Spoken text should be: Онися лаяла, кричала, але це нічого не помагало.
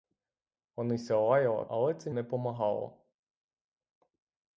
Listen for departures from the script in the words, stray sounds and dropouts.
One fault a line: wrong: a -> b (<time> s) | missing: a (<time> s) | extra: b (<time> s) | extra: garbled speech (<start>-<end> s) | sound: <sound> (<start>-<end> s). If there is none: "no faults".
missing: кричала (1.6 s)
missing: нічого (2.1 s)